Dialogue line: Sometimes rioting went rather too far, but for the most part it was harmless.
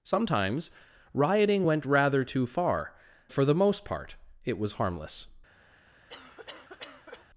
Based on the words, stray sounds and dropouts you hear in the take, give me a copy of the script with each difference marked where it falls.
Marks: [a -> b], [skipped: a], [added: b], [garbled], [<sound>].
Sometimes rioting went rather too far, [skipped: but] for the most part it was harmless. [cough]